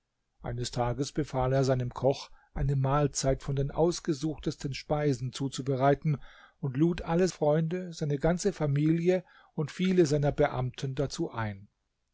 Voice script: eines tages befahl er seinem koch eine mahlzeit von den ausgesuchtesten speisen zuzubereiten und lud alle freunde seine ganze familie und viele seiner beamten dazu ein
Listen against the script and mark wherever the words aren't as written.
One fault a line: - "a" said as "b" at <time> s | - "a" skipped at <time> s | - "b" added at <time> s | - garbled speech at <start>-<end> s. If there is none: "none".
none